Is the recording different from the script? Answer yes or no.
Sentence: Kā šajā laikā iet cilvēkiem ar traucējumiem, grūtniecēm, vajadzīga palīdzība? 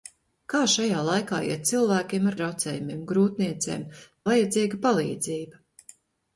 no